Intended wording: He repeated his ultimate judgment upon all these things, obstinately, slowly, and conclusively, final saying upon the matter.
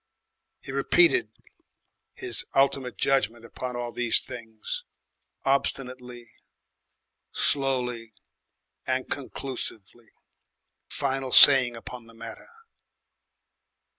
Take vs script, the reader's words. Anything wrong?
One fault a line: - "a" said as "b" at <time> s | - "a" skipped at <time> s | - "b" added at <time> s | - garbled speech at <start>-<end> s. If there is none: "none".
none